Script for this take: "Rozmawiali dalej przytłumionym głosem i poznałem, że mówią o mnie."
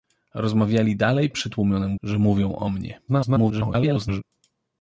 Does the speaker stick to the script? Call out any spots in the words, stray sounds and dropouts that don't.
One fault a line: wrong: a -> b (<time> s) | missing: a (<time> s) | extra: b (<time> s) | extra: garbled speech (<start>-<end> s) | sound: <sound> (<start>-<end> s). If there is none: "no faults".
missing: głosem i poznałem (2.0 s)
extra: garbled speech (3.1-4.2 s)